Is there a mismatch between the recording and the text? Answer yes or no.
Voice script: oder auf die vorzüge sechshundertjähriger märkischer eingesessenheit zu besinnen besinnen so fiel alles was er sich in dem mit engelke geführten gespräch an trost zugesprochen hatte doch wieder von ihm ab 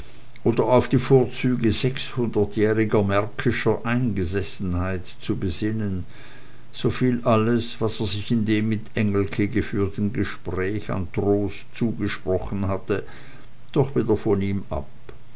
yes